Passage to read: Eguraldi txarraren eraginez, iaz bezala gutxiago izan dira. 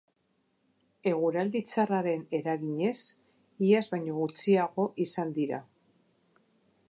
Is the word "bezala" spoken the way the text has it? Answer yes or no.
no